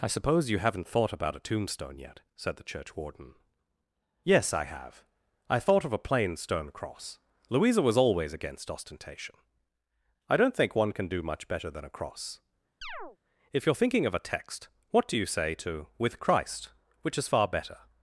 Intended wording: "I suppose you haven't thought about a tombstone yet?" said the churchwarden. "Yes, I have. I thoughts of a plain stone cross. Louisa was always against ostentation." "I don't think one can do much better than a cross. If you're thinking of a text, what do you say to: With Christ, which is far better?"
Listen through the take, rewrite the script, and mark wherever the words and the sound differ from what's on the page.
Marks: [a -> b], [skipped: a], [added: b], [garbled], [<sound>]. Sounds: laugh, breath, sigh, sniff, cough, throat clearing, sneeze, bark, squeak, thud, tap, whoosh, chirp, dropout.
"I suppose you haven't thought about a tombstone yet?" said the churchwarden. "Yes, I have. I [thoughts -> thought] of a plain stone cross. Louisa was always against ostentation." "I don't think one can do much better than a cross. [chirp] If you're thinking of a text, what do you say to: With Christ, which is far better?"